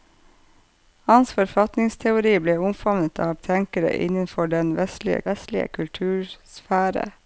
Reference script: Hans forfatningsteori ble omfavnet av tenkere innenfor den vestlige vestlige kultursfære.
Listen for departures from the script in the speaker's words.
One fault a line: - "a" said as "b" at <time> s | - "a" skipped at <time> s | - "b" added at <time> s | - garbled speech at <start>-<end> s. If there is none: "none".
none